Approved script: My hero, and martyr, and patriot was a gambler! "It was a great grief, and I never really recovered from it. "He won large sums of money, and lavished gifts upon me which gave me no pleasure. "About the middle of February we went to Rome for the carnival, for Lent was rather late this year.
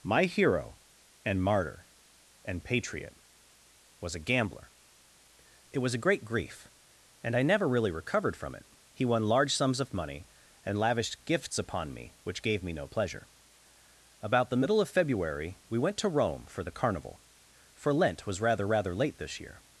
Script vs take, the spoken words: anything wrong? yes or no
yes